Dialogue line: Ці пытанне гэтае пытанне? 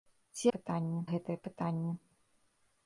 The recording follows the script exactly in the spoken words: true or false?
true